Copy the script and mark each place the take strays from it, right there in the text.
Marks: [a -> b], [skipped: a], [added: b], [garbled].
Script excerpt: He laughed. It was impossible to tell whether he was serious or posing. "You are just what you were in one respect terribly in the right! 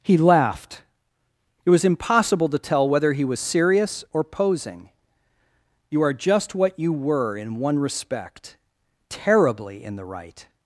He laughed. It was impossible to tell whether he was serious or posing. "You are just what you were in one respect terribly in the right!